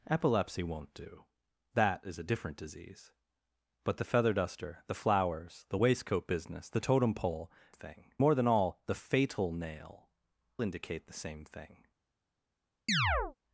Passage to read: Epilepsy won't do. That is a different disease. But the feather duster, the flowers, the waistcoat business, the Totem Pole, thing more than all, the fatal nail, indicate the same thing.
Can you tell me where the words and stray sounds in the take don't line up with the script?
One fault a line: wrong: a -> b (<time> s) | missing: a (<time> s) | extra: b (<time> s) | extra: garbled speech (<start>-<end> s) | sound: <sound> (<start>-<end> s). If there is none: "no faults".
sound: chirp (12.9-13.4 s)